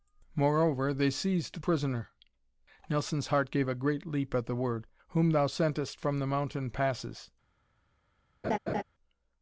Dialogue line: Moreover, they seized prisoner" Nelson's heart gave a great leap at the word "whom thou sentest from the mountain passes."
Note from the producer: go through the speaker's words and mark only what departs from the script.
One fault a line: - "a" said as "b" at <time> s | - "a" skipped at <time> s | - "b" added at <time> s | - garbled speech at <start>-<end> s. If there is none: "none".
none